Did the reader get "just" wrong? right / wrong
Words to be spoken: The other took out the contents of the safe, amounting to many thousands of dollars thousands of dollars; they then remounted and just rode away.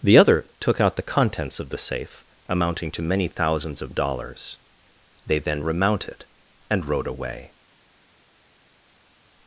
wrong